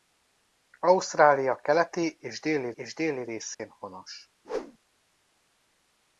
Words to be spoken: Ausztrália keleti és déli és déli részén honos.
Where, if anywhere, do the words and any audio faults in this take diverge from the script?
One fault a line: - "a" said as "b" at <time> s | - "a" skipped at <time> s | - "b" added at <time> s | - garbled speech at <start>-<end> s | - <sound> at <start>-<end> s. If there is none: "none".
- dropout at 3.5-3.6 s
- whoosh at 4.4-4.8 s